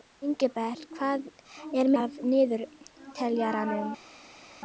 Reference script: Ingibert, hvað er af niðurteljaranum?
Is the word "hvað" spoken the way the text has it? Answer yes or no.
yes